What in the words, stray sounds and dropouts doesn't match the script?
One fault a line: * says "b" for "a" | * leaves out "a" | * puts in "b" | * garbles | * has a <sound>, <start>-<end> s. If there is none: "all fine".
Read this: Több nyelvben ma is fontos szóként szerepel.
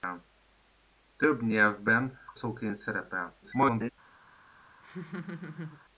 * leaves out "ma is fontos"
* garbles
* has a laugh, 4.8-5.8 s